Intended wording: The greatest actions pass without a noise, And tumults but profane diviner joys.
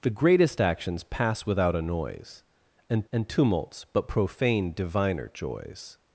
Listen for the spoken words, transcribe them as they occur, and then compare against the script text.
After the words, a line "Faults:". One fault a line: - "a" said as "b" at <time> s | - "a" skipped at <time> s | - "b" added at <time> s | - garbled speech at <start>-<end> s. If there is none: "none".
The greatest actions pass without a noise, And And tumults but profane diviner joys.
Faults:
- "And" added at 3.1 s